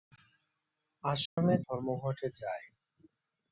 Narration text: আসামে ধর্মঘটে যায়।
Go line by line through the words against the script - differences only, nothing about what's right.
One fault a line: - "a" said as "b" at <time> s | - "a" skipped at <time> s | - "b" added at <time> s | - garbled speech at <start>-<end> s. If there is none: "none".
none